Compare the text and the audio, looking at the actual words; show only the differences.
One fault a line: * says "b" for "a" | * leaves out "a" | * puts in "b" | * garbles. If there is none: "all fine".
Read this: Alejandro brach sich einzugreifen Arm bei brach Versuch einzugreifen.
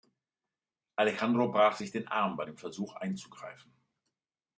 * says "den" for "einzugreifen"
* says "dem" for "brach"